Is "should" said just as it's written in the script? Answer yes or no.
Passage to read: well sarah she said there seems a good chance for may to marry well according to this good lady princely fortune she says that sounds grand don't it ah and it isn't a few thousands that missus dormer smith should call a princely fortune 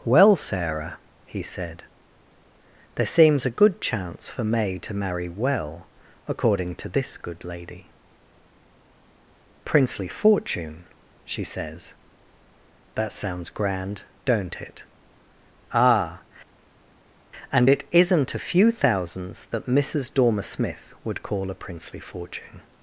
no